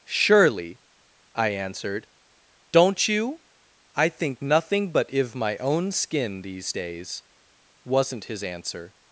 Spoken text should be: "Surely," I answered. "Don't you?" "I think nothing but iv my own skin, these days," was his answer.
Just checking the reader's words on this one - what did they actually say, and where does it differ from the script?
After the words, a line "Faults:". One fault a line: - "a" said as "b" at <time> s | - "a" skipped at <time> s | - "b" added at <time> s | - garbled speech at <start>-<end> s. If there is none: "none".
"Surely," I answered. "Don't you?" "I think nothing but iv my own skin, these days," wasn't his answer.
Faults:
- "was" said as "wasn't" at 7.8 s